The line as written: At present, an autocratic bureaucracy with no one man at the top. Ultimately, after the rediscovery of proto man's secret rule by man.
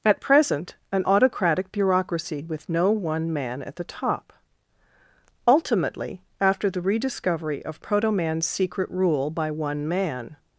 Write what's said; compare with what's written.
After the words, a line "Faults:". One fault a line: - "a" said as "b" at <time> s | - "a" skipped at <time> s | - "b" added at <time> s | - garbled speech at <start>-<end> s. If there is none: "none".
At present, an autocratic bureaucracy with no one man at the top. Ultimately, after the rediscovery of proto man's secret rule by one man.
Faults:
- "one" added at 9.5 s